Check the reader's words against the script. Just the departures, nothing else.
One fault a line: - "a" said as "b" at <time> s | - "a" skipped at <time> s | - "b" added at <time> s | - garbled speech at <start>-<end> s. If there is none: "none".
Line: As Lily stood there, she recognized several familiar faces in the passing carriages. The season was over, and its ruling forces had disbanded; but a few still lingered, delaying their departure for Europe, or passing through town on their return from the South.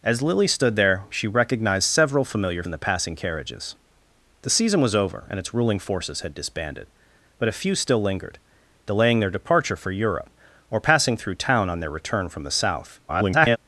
- "faces" skipped at 2.6 s
- garbled speech at 13.1-13.6 s